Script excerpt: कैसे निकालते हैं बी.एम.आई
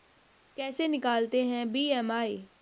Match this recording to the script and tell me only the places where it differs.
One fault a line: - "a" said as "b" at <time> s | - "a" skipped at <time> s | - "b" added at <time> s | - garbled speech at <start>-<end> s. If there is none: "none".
none